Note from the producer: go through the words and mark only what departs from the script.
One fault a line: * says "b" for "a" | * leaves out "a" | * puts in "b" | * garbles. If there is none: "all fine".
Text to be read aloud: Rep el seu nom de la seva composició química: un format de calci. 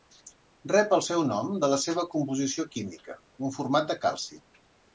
all fine